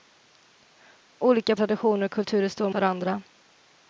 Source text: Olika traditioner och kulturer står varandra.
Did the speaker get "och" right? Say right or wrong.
right